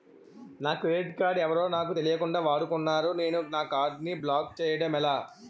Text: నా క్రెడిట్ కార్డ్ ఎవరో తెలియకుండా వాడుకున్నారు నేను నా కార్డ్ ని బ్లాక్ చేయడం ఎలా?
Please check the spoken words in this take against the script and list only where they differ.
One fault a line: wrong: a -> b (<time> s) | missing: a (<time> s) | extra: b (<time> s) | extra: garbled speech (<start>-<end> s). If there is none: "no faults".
extra: నాకు (1.7 s)